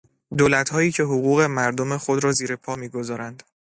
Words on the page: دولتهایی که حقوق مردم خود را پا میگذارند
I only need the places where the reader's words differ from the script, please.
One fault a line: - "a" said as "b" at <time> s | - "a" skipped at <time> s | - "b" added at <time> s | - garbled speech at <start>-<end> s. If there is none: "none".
- "زیر" added at 2.3 s